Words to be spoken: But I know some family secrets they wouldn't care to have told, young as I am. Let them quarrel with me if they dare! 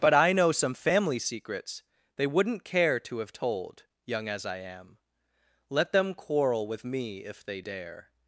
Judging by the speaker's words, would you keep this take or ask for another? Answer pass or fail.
pass